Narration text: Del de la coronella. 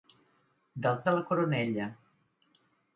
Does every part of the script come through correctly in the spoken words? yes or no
yes